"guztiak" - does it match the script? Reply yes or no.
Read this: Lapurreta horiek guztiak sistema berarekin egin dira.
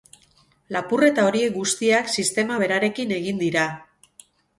yes